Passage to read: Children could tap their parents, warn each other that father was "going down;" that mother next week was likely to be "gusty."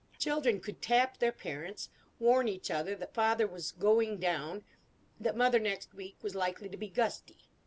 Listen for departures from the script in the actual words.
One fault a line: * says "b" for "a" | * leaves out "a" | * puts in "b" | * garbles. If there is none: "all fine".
all fine